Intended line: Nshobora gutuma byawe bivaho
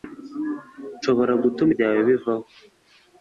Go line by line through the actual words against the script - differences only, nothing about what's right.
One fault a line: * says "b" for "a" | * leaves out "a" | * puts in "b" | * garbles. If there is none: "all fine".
all fine